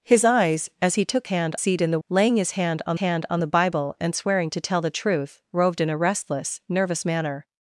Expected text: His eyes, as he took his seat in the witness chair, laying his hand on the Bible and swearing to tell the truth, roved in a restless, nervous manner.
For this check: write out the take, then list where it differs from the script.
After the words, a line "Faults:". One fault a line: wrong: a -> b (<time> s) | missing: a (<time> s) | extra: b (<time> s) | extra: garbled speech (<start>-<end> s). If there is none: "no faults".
His eyes, as he took hand seat in the laying his hand on hand on the Bible and swearing to tell the truth, roved in a restless, nervous manner.
Faults:
wrong: his -> hand (1.3 s)
wrong: witness chair laying his -> laying his hand on (2.1 s)